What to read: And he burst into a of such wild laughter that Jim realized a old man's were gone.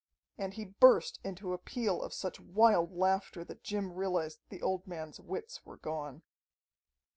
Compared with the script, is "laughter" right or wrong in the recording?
right